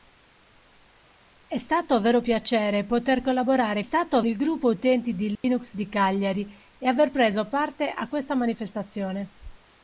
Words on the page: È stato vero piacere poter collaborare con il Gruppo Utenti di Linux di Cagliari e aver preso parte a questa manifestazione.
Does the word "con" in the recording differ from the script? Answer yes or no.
yes